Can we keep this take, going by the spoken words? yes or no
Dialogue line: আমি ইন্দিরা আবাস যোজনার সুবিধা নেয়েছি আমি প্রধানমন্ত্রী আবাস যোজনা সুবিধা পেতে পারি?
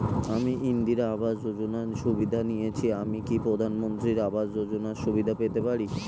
no